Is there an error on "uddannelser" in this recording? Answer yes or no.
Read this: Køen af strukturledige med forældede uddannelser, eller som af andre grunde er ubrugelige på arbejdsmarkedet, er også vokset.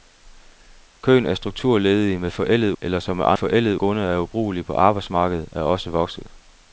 yes